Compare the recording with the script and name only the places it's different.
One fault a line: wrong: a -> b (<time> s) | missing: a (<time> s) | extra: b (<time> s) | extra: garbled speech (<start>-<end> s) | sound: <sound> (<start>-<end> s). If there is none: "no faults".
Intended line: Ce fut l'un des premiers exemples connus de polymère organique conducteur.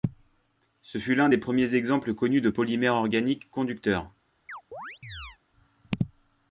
sound: chirp (4.5-5.4 s)